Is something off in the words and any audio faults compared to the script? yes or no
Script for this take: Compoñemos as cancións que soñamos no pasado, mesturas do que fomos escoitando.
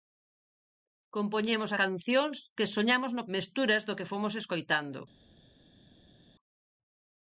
yes